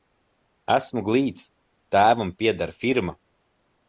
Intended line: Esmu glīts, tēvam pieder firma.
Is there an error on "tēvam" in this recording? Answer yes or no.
no